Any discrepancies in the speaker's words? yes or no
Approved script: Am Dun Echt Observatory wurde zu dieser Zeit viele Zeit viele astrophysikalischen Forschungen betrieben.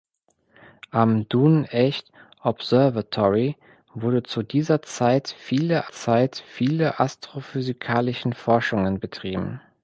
no